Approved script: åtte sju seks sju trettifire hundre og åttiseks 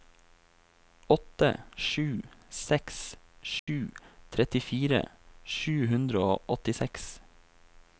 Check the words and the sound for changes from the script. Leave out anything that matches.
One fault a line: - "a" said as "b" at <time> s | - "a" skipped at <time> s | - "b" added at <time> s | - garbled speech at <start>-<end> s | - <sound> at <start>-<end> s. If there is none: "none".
- dropout at 3.6-3.7 s
- "sju" added at 5.6 s